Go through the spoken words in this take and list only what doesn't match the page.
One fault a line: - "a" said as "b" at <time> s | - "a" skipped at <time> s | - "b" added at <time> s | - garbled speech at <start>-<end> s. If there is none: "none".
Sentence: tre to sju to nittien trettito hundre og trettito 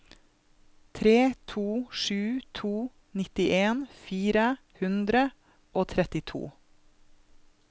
- "trettito" said as "fire" at 4.1 s